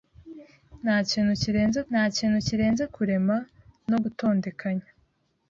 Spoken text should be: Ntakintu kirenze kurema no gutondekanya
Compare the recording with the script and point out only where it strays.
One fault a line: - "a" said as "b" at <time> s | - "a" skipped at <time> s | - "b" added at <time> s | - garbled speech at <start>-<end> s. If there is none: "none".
- "ntakintu kirenze" added at 1.9 s